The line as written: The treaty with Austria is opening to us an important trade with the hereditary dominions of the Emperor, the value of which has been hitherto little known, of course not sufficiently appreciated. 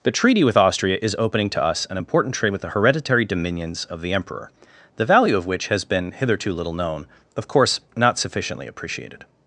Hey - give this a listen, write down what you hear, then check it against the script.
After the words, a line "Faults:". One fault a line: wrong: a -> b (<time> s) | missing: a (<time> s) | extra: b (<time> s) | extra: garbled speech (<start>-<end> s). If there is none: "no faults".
The treaty with Austria is opening to us an important trade with the hereditary dominions of the Emperor, the value of which has been hitherto little known, of course not sufficiently appreciated.
Faults:
no faults